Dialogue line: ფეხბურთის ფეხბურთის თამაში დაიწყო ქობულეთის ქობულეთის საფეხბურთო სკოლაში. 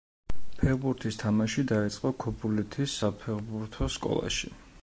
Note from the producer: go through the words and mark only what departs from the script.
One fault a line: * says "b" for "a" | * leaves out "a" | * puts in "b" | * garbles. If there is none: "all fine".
* leaves out "ფეხბურთის"
* leaves out "ქობულეთის"